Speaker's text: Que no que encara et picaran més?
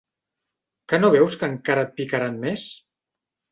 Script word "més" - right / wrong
right